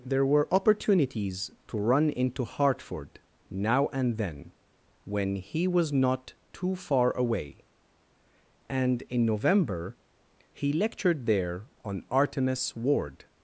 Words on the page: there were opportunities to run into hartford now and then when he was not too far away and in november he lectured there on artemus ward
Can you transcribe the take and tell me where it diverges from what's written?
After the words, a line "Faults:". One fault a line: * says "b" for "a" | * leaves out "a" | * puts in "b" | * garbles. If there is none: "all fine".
there were opportunities to run into hartford now and then when he was not too far away and in november he lectured there on artemus ward
Faults:
all fine